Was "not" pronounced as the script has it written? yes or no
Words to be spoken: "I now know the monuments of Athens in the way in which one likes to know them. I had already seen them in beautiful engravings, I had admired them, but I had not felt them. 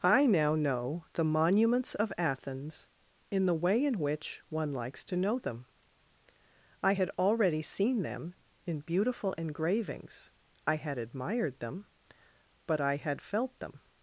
no